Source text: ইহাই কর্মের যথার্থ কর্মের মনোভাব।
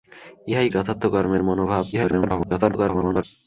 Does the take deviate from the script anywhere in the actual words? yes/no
yes